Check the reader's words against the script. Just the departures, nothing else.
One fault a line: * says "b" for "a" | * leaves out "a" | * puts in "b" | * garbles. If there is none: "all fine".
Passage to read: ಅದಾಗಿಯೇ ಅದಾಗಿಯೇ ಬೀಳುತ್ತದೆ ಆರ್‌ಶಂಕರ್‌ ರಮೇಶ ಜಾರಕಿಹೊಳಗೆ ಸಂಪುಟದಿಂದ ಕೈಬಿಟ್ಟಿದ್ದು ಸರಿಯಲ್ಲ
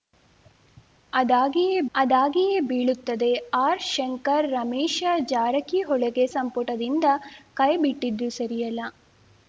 all fine